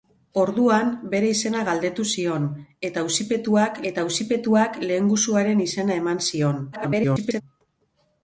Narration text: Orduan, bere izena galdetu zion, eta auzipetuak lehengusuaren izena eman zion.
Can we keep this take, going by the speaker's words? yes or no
no